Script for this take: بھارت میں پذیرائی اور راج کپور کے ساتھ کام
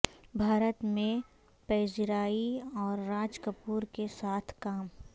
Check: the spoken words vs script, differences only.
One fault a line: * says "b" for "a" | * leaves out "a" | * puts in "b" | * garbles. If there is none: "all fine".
all fine